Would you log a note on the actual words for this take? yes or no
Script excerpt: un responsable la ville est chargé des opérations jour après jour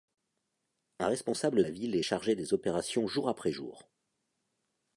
no